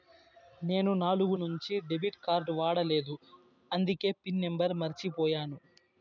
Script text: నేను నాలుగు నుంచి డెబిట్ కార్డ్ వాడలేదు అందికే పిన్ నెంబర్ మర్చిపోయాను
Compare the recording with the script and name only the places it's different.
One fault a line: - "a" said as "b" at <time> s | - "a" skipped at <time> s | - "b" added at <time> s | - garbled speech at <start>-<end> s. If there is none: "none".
none